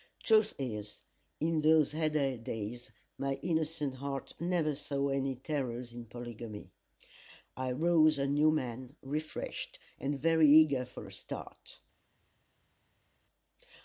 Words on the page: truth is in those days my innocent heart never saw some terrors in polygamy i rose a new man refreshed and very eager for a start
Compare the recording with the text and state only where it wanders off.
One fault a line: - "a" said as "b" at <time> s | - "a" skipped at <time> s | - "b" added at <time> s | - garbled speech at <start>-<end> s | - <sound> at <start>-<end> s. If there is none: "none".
- "heyday" added at 1.9 s
- "some" said as "any" at 5.1 s